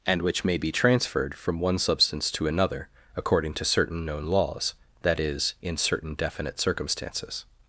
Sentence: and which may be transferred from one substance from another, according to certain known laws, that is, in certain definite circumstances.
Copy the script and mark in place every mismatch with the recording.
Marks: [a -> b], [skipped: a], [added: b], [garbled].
and which may be transferred from one substance [from -> to] another, according to certain known laws, that is, in certain definite circumstances.